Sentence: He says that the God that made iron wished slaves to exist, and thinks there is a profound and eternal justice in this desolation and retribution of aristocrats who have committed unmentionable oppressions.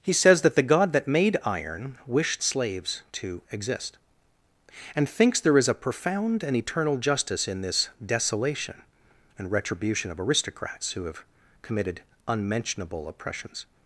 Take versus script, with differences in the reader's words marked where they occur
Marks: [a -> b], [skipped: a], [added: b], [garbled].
He says that the God that made iron wished slaves to exist, and thinks there is a profound and eternal justice in this desolation and retribution of aristocrats who have committed unmentionable oppressions.